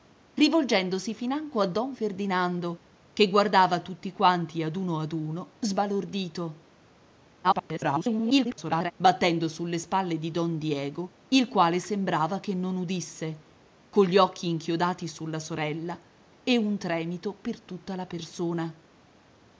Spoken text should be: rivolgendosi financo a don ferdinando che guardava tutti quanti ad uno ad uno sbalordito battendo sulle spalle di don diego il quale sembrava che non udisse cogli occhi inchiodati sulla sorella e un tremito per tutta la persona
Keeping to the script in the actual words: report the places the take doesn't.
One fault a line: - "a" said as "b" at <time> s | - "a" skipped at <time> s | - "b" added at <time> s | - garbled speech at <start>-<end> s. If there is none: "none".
- garbled speech at 7.4-8.9 s